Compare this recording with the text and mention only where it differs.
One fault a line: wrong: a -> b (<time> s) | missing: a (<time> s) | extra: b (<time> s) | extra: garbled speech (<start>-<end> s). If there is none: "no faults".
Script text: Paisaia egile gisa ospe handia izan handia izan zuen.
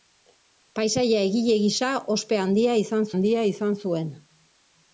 no faults